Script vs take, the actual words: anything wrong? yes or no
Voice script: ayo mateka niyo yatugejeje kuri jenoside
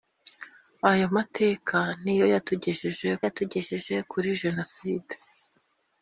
yes